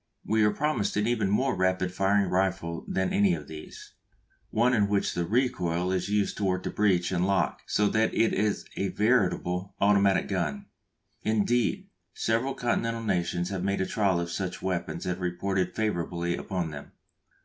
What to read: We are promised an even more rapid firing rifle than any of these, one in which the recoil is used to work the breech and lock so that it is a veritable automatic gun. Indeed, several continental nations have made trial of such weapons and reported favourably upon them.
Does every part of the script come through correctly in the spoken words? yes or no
yes